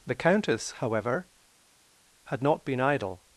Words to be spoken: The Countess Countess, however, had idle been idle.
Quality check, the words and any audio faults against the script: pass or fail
fail